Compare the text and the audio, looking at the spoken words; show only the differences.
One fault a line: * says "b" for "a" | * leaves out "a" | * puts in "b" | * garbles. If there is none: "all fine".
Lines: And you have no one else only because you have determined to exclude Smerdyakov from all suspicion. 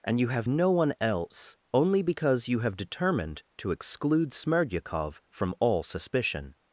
all fine